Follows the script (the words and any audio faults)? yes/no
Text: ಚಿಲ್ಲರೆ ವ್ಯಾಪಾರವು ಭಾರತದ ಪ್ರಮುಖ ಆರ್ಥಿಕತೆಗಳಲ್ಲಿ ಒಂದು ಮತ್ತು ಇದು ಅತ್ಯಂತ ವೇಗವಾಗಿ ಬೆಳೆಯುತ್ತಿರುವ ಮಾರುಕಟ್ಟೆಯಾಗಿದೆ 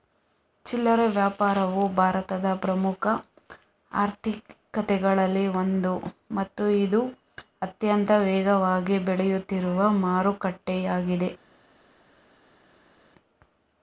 yes